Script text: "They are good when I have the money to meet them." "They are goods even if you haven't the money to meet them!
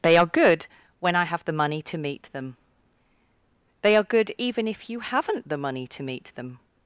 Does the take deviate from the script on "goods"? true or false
true